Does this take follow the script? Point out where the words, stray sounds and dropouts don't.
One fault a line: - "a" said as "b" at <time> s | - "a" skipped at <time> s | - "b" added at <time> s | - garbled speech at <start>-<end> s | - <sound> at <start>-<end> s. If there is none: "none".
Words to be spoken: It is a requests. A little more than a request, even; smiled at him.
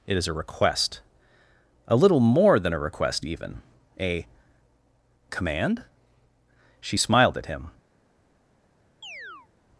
- "requests" said as "request" at 0.3 s
- "a Command she" added at 4.0 s
- chirp at 9.0-9.5 s